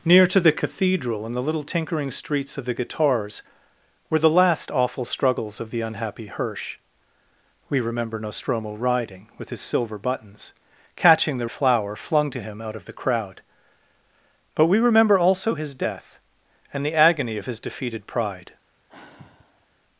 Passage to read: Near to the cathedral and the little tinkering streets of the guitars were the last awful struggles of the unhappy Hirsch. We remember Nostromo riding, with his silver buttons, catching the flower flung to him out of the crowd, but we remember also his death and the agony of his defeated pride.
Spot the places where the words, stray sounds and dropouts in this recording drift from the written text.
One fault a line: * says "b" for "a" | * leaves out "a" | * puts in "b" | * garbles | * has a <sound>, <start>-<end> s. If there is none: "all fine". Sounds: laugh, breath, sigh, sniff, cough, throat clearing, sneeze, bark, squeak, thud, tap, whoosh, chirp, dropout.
* has a sigh, 18.9-19.7 s